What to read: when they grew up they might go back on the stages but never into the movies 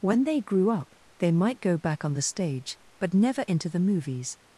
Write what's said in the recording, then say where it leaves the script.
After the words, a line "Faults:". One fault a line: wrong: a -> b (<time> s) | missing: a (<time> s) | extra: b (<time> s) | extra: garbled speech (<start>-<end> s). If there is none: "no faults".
when they grew up they might go back on the stage but never into the movies
Faults:
wrong: stages -> stage (2.2 s)